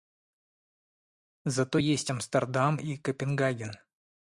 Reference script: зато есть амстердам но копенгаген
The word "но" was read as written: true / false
false